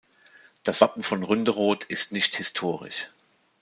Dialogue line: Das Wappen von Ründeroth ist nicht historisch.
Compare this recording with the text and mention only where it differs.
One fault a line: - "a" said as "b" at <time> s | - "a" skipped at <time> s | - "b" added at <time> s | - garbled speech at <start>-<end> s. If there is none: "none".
none